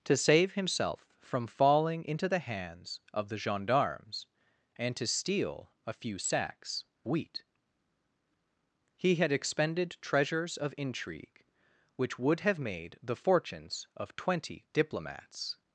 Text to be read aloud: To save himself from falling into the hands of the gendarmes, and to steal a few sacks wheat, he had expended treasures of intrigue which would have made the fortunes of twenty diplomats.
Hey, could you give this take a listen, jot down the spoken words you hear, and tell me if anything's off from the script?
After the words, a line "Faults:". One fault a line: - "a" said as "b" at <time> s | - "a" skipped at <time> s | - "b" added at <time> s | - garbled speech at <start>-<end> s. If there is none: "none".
To save himself from falling into the hands of the gendarmes, and to steal a few sacks wheat, he had expended treasures of intrigue which would have made the fortunes of twenty diplomats.
Faults:
none